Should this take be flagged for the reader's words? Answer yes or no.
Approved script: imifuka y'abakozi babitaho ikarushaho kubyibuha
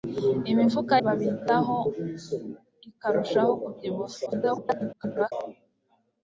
yes